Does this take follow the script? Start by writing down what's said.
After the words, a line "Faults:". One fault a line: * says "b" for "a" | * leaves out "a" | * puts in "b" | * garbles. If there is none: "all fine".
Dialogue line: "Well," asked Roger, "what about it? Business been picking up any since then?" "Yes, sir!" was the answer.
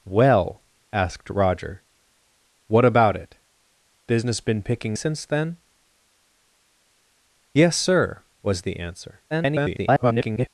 "Well," asked Roger, "what about it? Business been picking since then?" "Yes, sir!" was the answer. [garbled]
Faults:
* leaves out "up any"
* garbles